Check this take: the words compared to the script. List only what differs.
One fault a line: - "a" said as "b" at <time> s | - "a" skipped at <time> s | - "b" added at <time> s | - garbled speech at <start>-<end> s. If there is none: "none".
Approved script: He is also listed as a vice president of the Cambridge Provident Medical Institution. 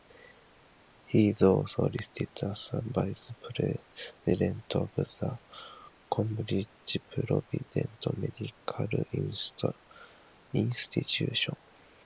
none